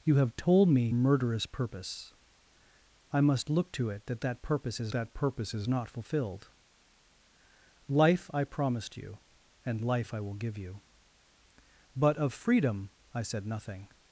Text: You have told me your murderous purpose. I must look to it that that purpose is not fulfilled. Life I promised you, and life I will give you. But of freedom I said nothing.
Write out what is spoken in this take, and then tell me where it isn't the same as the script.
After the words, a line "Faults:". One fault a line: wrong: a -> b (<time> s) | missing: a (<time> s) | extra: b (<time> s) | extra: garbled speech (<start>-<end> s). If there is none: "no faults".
You have told me murderous purpose. I must look to it that that purpose is that purpose is not fulfilled. Life I promised you, and life I will give you. But of freedom I said nothing.
Faults:
missing: your (0.9 s)
extra: that purpose is (4.9 s)